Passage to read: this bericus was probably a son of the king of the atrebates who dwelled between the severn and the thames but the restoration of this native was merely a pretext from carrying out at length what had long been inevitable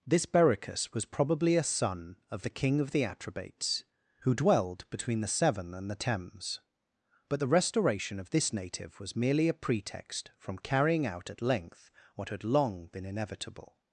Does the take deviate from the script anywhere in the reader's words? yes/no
no